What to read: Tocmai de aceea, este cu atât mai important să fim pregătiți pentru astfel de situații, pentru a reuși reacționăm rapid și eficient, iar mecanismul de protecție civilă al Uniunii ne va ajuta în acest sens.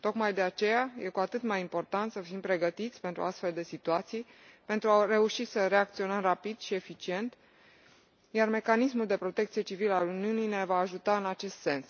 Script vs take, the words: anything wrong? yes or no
yes